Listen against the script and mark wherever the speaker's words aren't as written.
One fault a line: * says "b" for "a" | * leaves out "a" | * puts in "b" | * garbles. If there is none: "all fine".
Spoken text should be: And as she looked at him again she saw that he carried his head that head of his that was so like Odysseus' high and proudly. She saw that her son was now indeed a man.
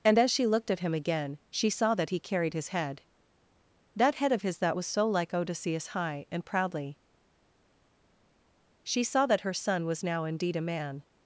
all fine